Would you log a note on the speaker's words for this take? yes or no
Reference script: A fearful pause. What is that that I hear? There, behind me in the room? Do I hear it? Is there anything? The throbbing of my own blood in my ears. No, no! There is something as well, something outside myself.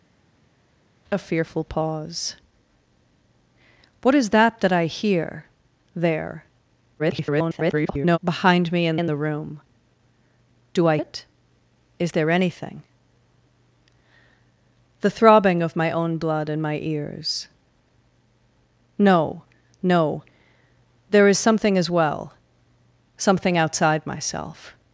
yes